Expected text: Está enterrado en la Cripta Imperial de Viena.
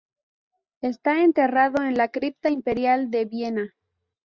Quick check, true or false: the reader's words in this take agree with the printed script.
true